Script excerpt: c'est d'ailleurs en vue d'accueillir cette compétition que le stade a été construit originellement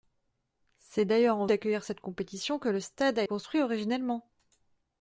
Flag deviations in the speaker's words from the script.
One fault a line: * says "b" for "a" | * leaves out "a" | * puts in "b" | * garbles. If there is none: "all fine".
* leaves out "vue"
* leaves out "été"